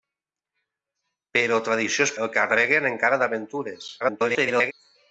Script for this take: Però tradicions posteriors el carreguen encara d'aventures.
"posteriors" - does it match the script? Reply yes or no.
no